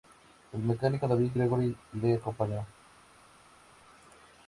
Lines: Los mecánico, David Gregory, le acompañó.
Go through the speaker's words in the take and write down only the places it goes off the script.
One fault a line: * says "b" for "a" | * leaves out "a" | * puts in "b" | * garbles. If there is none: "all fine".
* says "El" for "Los"